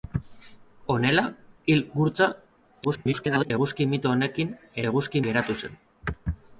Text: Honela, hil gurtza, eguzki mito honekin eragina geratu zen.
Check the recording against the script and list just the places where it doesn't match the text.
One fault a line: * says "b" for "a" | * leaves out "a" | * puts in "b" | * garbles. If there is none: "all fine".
* garbles
* says "eguzki" for "eragina"